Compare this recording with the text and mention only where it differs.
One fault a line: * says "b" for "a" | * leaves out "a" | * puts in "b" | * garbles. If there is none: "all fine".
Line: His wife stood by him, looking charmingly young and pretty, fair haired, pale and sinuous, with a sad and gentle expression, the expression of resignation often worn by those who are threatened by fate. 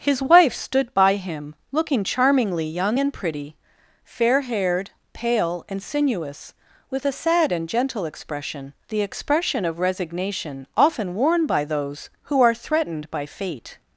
all fine